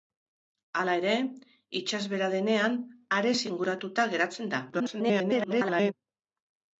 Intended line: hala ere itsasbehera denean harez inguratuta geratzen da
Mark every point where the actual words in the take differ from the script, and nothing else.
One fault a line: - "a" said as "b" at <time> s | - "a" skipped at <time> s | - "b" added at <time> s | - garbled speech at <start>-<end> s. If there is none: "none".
- garbled speech at 4.7-5.9 s